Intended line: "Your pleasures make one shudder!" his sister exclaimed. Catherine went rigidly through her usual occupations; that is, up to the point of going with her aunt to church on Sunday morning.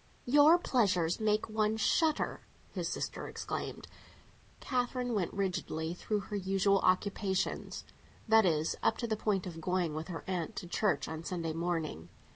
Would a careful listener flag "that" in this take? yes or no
no